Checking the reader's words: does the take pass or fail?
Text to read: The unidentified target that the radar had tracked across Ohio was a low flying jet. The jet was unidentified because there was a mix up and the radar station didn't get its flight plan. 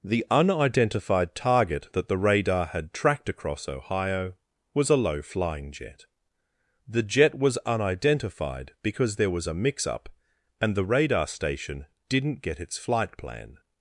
pass